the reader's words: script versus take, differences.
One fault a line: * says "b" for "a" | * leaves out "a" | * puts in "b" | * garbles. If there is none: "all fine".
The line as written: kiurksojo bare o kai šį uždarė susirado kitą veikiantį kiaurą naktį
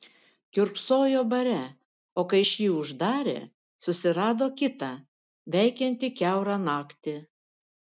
all fine